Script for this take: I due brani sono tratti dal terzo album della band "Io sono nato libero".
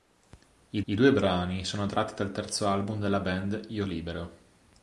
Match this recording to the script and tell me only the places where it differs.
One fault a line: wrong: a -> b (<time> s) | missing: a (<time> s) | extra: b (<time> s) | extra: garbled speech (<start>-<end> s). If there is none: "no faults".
extra: I (0.9 s)
missing: sono nato (3.9 s)